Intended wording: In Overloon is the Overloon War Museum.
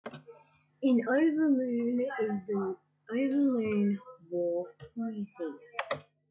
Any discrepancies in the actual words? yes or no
no